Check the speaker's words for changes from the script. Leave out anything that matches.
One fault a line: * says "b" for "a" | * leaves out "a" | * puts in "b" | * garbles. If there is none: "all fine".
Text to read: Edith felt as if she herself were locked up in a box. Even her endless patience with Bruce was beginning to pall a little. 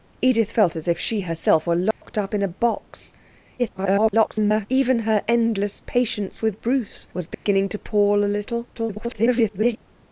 * garbles
* garbles